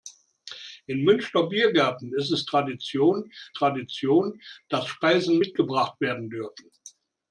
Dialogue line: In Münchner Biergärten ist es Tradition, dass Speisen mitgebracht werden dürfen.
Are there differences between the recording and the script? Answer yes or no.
yes